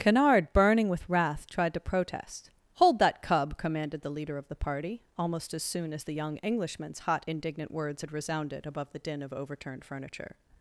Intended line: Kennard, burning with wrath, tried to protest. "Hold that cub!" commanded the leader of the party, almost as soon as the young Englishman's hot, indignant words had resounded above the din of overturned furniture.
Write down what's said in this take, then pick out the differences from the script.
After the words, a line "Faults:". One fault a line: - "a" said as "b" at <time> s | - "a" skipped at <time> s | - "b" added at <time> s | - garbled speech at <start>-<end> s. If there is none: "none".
Kennard, burning with wrath, tried to protest. "Hold that cub!" commanded the leader of the party, almost as soon as the young Englishman's hot, indignant words had resounded above the din of overturned furniture.
Faults:
none